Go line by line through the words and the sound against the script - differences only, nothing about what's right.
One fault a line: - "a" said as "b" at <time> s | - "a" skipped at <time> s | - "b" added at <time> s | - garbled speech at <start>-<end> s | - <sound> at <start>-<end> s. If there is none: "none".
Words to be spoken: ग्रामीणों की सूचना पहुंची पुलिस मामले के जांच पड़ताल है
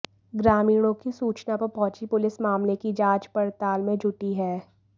- "पर" added at 1.6 s
- "के" said as "की" at 2.7 s
- "में जुटी" added at 3.8 s